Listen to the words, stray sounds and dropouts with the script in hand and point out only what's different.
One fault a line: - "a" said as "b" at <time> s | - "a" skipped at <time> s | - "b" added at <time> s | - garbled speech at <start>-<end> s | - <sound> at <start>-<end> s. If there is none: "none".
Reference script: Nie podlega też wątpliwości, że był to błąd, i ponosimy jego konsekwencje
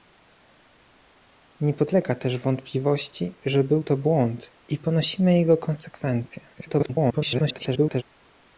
- garbled speech at 6.5-8.0 s